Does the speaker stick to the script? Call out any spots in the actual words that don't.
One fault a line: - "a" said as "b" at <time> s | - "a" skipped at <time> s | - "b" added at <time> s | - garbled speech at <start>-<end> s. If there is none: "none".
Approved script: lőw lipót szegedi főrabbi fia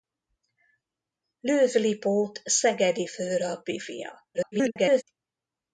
- garbled speech at 4.3-5.0 s